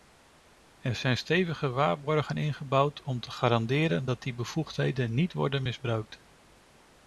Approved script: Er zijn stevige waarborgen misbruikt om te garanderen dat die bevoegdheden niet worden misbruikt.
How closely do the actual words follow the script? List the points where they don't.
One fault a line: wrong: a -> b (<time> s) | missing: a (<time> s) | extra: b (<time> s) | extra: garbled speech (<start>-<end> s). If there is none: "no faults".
wrong: misbruikt -> ingebouwd (2.4 s)